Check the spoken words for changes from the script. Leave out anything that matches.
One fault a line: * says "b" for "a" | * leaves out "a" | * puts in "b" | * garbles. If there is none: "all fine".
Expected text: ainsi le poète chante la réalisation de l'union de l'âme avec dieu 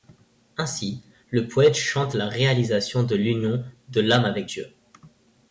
all fine